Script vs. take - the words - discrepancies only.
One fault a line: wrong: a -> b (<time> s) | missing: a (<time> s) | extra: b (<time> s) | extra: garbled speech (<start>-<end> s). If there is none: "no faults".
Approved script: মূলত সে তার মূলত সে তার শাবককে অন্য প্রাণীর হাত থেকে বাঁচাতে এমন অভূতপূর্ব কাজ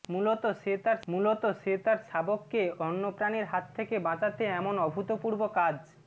no faults